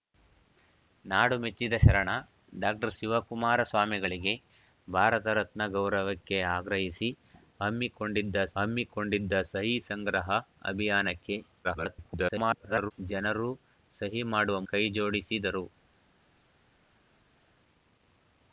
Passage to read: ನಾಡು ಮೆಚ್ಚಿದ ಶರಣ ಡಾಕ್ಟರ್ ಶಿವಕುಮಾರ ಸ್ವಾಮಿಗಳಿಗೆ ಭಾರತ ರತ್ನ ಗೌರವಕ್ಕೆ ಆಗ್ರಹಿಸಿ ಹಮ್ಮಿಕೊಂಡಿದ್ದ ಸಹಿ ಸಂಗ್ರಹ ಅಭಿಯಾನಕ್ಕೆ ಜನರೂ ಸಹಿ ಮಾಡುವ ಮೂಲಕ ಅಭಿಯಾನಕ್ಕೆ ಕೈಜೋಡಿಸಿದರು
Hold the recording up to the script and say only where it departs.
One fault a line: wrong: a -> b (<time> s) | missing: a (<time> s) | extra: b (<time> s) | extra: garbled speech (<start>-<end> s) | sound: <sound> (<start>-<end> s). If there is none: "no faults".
extra: ಹಮ್ಮಿಕೊಂಡಿದ್ದ (8.5 s)
extra: garbled speech (11.6-12.9 s)
missing: ಮೂಲಕ ಅಭಿಯಾನಕ್ಕೆ (14.6 s)